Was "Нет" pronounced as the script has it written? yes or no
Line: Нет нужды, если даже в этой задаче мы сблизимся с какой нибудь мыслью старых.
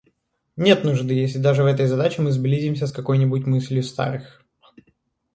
yes